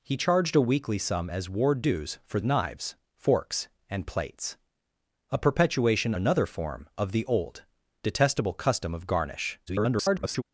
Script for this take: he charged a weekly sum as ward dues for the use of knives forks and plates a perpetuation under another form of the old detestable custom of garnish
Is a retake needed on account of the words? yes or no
yes